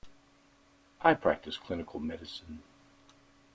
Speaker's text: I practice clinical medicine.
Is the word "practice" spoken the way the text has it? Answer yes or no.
yes